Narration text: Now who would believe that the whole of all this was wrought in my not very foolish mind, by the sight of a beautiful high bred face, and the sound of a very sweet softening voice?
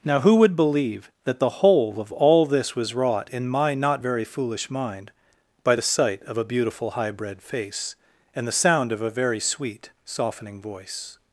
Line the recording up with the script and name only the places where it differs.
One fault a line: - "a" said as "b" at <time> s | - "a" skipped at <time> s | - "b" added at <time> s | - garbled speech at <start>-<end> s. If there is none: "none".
none